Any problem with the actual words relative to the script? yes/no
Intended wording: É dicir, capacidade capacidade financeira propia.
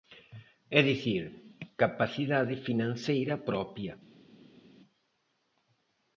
yes